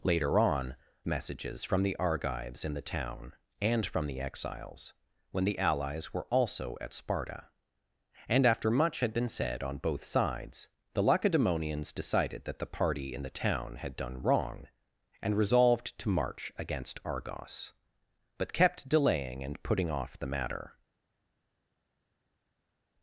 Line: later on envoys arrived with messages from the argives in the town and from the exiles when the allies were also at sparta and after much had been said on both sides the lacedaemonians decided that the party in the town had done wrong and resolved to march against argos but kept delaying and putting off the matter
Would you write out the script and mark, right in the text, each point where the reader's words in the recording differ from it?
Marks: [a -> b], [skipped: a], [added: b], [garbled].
later on [skipped: envoys arrived with] messages from the argives in the town and from the exiles when the allies were also at sparta and after much had been said on both sides the lacedaemonians decided that the party in the town had done wrong and resolved to march against argos but kept delaying and putting off the matter